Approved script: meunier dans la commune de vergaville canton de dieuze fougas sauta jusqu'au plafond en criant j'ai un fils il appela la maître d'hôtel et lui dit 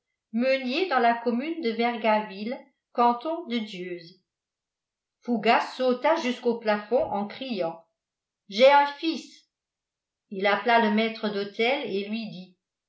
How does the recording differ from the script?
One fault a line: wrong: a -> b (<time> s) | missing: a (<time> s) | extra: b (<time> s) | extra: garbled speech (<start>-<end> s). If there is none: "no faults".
wrong: la -> le (10.8 s)